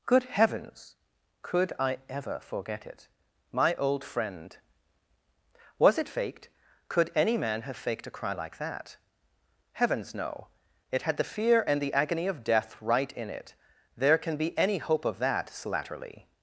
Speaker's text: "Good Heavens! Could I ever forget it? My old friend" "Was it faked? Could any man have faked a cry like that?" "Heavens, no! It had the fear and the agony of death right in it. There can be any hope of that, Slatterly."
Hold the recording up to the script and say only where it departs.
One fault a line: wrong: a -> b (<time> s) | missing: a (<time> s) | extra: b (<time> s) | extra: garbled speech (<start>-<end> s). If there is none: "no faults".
no faults